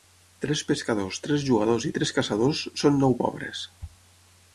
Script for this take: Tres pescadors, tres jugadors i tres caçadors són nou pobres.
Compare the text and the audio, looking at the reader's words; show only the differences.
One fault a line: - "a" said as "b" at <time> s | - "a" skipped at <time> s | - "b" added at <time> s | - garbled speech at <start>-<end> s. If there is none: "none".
none